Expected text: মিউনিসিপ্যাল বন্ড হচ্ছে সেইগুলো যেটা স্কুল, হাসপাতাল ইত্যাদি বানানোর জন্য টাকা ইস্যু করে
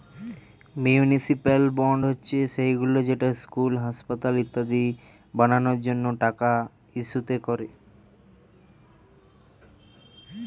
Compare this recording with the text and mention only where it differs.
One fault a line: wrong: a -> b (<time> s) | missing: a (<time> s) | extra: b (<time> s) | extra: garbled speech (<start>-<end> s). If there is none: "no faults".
no faults